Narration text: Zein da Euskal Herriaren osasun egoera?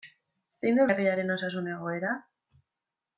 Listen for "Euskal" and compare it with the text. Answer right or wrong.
wrong